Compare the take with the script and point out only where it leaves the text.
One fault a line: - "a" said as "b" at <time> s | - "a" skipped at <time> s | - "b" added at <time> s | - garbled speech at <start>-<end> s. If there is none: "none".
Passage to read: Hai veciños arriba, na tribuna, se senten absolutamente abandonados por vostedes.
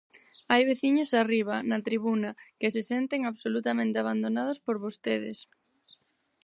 - "que" added at 2.6 s